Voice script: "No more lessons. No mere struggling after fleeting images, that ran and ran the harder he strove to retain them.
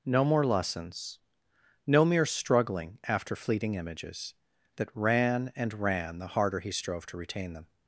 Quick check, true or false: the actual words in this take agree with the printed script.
true